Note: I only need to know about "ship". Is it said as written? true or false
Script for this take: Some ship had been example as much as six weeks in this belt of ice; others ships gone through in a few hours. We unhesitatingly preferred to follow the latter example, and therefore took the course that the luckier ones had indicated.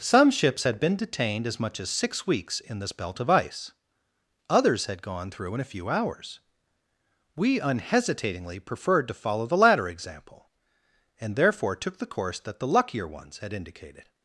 false